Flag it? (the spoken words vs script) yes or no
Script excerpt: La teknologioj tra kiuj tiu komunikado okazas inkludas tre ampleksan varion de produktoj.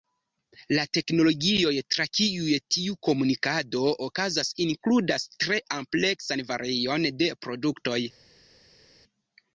no